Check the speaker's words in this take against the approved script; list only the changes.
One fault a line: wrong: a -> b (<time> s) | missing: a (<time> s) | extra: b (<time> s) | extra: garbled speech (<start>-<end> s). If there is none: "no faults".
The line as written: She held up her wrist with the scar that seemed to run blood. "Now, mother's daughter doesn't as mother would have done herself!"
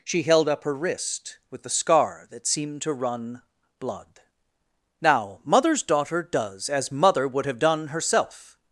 wrong: doesn't -> does (6.2 s)